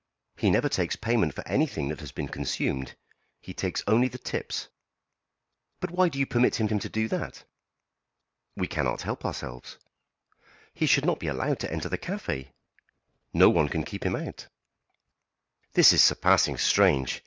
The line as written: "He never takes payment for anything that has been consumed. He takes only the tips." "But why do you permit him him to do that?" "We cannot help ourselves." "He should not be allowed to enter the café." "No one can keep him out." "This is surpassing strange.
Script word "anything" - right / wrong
right